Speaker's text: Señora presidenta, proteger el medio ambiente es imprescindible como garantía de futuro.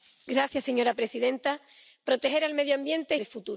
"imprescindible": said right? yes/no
no